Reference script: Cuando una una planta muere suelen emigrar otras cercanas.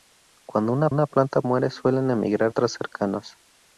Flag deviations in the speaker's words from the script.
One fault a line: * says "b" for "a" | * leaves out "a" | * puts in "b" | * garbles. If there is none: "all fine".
all fine